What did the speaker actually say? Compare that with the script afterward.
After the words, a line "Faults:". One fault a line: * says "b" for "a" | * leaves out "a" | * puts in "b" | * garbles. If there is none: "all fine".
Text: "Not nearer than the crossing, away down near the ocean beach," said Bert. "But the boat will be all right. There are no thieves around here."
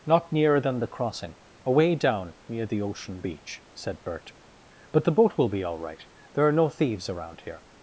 "Not nearer than the crossing, away down near the ocean beach," said Bert. "But the boat will be all right. There are no thieves around here."
Faults:
all fine